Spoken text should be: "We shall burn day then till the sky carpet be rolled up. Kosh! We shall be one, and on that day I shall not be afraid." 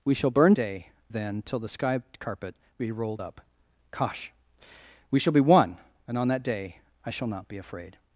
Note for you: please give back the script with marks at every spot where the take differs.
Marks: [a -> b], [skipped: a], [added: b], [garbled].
"We shall burn day then till the sky carpet be rolled up. Kosh! We shall be one, and on that day I shall not be afraid."